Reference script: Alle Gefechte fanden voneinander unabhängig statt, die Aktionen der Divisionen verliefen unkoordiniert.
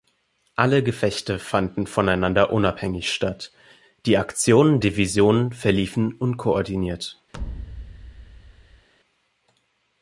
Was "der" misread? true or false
true